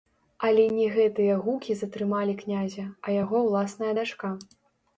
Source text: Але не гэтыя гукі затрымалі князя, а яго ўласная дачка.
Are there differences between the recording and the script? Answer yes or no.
no